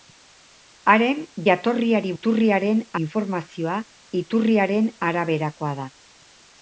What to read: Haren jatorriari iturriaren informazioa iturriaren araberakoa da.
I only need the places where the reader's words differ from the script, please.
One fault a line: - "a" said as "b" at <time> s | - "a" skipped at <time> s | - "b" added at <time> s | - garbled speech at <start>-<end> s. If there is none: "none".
none